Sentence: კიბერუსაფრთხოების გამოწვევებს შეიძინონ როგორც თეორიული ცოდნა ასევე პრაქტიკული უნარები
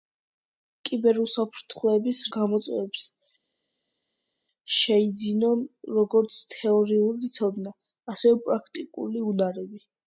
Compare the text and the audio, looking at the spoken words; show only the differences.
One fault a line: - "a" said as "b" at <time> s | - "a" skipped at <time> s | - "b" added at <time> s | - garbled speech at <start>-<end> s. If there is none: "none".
none